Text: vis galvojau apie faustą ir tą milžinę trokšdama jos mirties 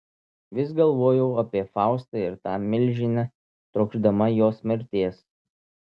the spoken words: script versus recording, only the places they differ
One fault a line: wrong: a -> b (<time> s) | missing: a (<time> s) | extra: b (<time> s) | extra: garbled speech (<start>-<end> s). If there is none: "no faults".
no faults